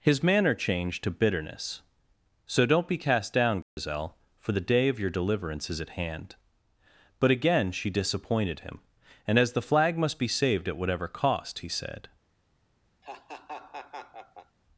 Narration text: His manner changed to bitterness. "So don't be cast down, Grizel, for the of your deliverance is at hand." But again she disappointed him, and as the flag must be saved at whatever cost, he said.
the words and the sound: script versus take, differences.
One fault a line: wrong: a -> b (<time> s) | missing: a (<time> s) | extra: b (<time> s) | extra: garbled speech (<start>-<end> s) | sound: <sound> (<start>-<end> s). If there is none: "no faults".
sound: dropout (3.6-3.8 s)
extra: day (4.7 s)
sound: laugh (13.0-14.6 s)